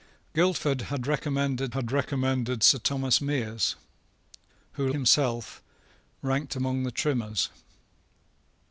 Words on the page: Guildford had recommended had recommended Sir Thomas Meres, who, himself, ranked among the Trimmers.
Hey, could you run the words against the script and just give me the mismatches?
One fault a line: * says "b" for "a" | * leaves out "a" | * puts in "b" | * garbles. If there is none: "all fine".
all fine